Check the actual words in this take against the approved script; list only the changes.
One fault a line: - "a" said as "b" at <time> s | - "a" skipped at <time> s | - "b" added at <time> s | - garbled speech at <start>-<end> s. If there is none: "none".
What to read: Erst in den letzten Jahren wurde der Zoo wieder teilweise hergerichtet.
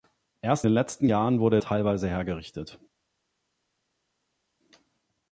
- "in" skipped at 0.7 s
- "der Zoo wieder" skipped at 1.6 s